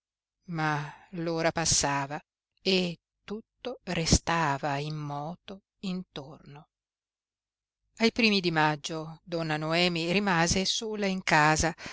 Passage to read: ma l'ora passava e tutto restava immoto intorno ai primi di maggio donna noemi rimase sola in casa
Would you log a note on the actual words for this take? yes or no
no